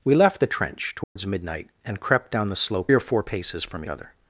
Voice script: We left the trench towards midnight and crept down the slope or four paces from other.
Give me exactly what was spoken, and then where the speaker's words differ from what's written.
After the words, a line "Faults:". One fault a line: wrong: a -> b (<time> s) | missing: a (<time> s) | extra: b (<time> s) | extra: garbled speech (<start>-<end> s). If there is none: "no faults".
We left the trench towards midnight and crept down the slope or four paces from other.
Faults:
no faults